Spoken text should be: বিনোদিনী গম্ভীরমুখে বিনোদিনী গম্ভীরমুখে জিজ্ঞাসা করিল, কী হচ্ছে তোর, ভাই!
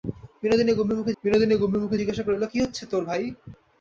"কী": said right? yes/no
yes